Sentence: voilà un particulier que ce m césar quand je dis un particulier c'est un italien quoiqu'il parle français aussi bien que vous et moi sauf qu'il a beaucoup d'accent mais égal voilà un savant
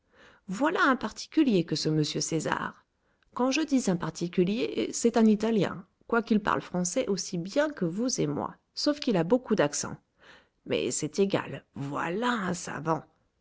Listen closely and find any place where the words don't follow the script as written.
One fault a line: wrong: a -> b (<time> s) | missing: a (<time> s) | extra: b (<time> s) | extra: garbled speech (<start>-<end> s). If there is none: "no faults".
extra: c'est (10.9 s)